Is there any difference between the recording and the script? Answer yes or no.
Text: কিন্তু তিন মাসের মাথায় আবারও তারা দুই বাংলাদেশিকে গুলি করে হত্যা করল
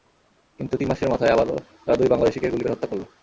no